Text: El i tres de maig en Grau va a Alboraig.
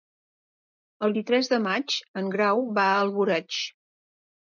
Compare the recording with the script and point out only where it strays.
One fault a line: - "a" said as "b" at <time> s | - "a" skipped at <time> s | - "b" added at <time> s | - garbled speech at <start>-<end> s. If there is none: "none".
none